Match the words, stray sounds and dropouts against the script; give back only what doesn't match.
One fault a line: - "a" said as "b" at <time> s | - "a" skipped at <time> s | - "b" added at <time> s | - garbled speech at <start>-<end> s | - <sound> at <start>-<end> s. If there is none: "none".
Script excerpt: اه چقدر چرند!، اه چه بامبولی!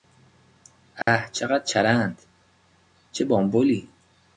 - dropout at 1.0-1.1 s
- "اه" skipped at 2.2 s